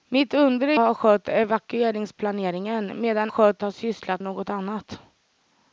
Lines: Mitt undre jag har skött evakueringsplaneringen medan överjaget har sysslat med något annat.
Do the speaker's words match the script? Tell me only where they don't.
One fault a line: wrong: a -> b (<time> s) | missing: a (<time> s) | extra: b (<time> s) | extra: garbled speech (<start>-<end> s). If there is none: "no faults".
missing: jag (0.8 s)
wrong: överjaget -> skött (3.3 s)
missing: med (4.2 s)